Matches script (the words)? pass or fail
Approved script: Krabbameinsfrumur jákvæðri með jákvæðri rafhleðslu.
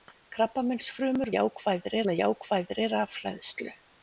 pass